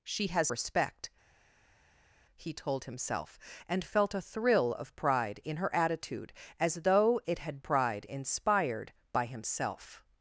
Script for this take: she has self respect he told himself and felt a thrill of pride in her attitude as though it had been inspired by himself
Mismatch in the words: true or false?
true